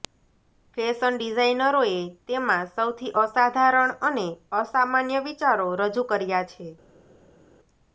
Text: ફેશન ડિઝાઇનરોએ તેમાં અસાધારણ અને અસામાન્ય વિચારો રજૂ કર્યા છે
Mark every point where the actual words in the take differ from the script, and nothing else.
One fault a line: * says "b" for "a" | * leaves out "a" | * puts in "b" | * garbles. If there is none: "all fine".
* puts in "સૌથી"